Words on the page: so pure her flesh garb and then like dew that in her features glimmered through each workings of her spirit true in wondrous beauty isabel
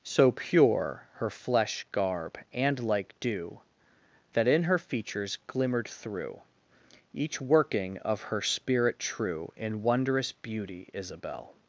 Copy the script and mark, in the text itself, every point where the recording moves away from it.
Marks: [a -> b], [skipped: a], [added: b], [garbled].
so pure her flesh garb and [skipped: then] like dew that in her features glimmered through each [workings -> working] of her spirit true in wondrous beauty isabel